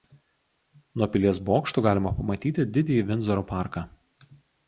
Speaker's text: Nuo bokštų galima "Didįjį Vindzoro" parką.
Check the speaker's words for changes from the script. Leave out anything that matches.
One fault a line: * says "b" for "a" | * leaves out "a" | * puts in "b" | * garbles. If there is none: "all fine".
* puts in "pilies"
* puts in "pamatyti"